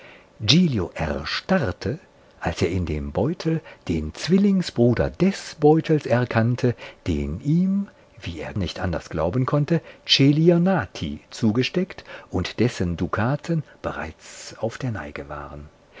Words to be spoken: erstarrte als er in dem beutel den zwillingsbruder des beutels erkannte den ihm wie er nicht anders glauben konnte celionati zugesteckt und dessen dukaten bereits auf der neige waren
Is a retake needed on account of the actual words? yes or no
no